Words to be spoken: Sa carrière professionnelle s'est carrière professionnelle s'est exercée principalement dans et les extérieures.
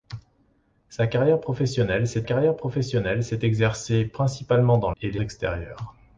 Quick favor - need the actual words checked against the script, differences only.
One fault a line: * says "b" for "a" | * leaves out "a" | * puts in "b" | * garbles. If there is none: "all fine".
all fine